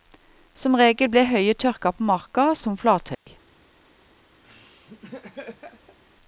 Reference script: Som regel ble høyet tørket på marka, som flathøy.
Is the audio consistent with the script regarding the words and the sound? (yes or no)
no